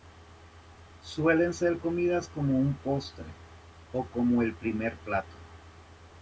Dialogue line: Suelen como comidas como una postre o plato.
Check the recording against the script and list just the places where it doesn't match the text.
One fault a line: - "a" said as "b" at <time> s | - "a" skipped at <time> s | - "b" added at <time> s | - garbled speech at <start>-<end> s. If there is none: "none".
- "como" said as "ser" at 1.5 s
- "una" said as "un" at 2.6 s
- "como el primer" added at 4.0 s